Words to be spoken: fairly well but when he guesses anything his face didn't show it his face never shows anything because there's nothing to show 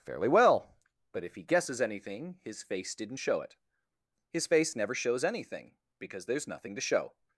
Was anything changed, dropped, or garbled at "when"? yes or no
yes